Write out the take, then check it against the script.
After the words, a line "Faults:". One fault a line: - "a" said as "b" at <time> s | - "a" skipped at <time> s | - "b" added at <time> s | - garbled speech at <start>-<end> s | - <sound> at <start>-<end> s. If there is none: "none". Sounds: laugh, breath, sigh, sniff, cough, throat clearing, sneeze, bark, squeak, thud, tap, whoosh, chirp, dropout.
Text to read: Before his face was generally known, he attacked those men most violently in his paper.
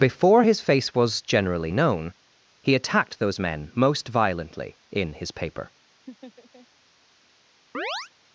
Before his face was generally known, he attacked those men most violently in his paper.
Faults:
- laugh at 6.1-6.7 s
- chirp at 7.7-8.1 s